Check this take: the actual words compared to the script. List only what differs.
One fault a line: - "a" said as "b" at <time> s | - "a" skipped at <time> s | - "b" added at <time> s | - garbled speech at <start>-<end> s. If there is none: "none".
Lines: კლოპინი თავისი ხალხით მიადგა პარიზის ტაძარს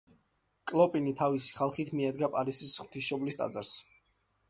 - "ღვთისმშობლის" added at 2.8 s